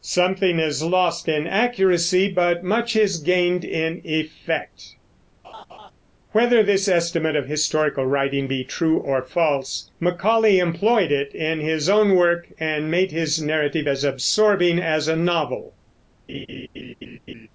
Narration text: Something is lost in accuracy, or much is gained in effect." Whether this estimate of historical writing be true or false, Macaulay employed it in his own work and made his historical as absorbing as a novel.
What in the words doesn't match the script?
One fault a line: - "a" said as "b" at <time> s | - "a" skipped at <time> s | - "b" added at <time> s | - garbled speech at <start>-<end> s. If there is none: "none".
- "or" said as "but" at 2.3 s
- "historical" said as "narrative" at 13.4 s